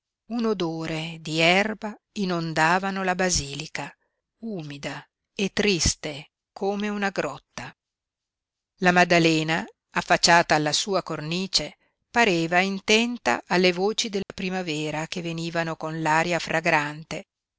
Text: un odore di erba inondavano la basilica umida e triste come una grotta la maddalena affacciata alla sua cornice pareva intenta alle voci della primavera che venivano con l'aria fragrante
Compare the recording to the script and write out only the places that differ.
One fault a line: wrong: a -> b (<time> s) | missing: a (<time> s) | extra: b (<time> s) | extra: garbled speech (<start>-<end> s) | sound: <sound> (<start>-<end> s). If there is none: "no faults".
sound: dropout (14.2-14.3 s)